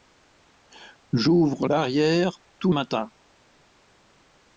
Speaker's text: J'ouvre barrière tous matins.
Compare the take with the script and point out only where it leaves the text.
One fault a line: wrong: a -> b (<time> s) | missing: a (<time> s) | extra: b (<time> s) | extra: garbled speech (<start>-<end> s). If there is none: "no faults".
no faults